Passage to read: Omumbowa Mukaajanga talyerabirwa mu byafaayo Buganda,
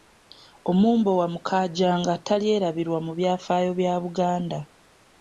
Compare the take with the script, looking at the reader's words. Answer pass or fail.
fail